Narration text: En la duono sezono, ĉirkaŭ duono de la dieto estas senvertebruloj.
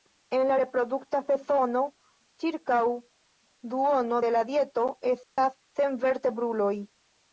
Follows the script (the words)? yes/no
no